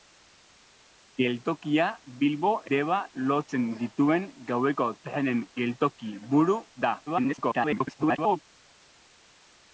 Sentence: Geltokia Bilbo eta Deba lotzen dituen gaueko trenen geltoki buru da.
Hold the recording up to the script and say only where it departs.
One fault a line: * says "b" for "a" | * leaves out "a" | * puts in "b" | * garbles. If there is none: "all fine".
* leaves out "eta"
* garbles